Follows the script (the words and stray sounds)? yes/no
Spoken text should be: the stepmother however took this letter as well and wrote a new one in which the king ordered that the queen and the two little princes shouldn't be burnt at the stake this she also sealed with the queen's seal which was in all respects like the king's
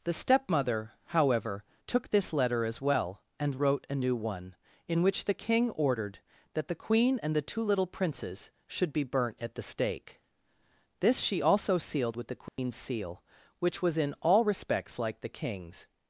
no